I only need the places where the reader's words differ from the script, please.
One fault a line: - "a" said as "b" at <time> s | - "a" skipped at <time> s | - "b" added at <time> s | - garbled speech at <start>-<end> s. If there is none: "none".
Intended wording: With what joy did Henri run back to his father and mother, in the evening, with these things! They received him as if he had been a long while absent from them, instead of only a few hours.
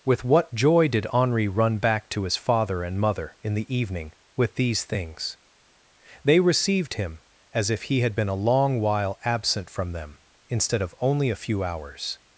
none